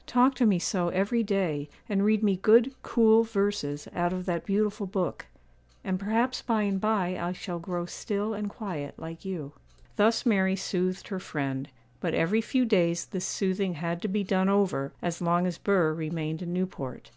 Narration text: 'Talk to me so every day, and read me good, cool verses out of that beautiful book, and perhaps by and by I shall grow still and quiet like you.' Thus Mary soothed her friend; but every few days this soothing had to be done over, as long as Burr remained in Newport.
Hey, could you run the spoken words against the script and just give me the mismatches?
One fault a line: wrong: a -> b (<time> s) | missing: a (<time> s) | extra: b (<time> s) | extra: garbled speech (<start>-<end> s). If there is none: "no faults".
no faults